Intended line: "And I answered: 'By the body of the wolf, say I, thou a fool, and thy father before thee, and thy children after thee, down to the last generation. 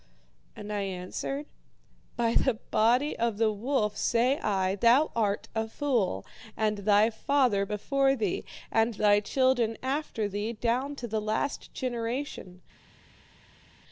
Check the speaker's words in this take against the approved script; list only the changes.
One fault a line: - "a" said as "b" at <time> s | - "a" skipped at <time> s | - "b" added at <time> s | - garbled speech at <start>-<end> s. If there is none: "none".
- "art" added at 5.2 s